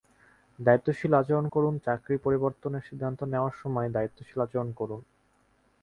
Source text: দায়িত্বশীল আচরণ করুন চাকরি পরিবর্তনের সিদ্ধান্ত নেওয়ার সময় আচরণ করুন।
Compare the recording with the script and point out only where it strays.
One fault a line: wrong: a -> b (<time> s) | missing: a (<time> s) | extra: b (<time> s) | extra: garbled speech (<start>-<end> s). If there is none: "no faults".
extra: দায়িত্বশীল (3.9 s)